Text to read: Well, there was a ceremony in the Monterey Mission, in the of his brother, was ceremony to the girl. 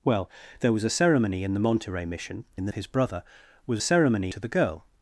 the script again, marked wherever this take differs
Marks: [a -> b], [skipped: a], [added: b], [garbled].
Well, there was a ceremony in the Monterey Mission, in the of his brother, was ceremony to the girl.